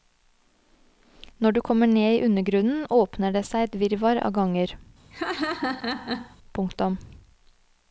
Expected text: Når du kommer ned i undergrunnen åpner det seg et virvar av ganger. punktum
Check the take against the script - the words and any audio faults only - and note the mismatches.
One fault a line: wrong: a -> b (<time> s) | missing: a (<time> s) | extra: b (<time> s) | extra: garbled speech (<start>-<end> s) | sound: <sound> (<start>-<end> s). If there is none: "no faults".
sound: laugh (5.1-6.4 s)